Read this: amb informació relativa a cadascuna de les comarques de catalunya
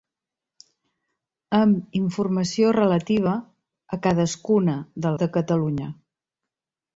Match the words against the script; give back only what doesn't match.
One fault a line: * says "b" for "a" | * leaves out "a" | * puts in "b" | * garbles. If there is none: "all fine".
* leaves out "les comarques"